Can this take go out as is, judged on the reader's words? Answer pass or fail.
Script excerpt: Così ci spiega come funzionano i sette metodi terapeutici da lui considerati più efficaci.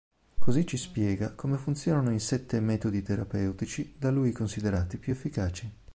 pass